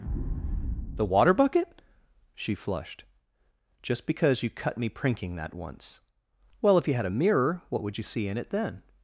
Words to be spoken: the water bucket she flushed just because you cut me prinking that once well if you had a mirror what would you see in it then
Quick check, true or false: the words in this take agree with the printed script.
true